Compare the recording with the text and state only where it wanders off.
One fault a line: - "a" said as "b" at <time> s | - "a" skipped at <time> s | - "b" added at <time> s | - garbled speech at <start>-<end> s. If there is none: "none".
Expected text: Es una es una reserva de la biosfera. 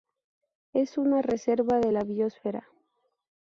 - "es una" skipped at 1.2 s